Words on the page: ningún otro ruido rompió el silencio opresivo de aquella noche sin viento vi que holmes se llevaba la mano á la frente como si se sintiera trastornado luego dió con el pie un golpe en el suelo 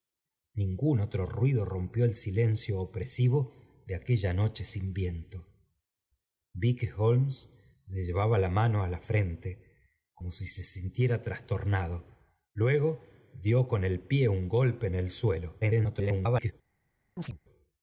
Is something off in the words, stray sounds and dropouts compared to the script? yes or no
yes